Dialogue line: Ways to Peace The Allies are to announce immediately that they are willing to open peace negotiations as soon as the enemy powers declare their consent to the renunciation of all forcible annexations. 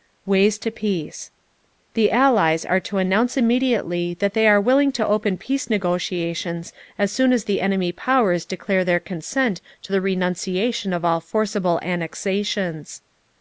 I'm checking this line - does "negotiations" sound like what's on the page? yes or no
yes